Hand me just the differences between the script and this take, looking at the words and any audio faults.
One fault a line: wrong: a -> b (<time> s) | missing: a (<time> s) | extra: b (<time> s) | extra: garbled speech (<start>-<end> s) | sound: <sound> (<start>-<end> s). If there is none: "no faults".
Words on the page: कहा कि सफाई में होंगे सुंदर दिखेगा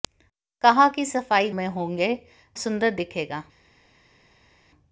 no faults